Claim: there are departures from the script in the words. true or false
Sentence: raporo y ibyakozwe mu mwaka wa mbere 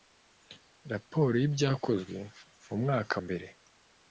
true